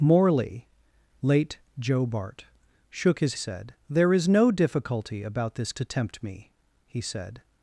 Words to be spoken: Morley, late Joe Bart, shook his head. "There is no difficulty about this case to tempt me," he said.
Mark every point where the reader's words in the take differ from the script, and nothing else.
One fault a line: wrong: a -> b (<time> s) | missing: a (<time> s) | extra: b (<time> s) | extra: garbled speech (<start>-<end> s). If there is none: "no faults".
wrong: head -> said (3.3 s)
missing: case (5.7 s)